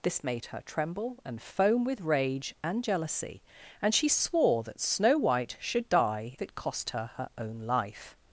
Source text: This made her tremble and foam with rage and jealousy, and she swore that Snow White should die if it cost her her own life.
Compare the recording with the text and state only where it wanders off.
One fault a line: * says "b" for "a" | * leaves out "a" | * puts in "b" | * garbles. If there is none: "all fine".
* leaves out "if"